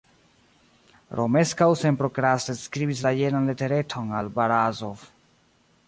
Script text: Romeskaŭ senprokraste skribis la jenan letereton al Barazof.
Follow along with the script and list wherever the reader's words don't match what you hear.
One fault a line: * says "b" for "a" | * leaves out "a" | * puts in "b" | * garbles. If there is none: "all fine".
all fine